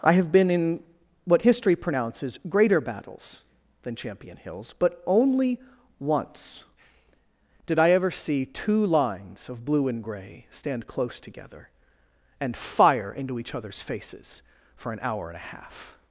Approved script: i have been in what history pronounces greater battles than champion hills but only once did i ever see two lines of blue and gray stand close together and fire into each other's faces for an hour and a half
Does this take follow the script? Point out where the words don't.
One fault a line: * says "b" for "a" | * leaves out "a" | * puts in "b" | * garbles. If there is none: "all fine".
all fine